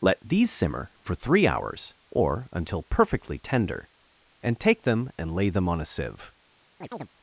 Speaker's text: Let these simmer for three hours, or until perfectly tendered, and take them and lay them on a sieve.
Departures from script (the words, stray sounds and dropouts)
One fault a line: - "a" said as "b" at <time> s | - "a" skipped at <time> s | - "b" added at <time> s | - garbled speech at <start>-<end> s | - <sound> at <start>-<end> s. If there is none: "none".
- "tendered" said as "tender" at 3.4 s
- chirp at 6.8-7.1 s